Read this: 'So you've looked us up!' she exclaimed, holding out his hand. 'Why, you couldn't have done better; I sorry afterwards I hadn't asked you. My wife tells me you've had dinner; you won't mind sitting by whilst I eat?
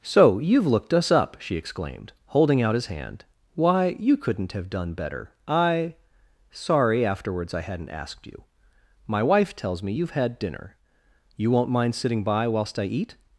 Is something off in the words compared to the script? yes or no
no